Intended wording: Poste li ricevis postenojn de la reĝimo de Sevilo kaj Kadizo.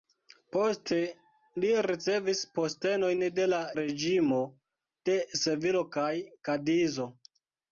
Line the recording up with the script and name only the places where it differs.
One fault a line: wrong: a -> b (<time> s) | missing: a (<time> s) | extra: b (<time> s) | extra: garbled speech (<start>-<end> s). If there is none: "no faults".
no faults